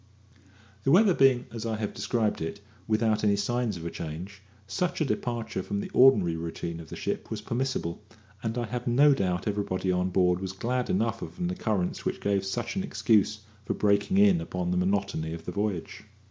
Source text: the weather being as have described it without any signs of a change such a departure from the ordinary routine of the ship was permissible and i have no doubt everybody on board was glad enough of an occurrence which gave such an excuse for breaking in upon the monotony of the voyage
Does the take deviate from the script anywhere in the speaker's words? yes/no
yes